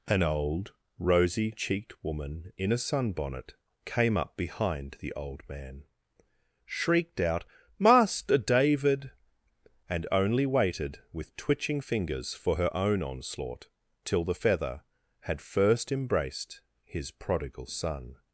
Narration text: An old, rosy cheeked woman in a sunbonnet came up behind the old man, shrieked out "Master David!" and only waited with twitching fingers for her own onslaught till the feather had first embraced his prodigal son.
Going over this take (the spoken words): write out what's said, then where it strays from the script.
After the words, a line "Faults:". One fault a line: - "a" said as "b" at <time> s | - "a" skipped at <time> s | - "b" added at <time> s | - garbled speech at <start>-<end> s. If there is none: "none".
An old, rosy cheeked woman in a sunbonnet came up behind the old man, shrieked out "Master David!" and only waited with twitching fingers for her own onslaught till the feather had first embraced his prodigal son.
Faults:
none